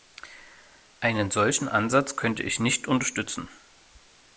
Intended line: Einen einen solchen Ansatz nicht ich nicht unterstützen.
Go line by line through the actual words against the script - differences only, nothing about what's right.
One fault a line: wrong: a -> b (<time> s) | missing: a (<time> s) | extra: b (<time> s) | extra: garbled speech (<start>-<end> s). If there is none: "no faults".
missing: einen (1.3 s)
wrong: nicht -> könnte (2.1 s)